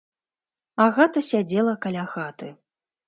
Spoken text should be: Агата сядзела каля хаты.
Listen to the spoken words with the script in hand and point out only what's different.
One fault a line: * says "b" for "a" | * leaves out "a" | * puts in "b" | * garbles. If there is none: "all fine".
all fine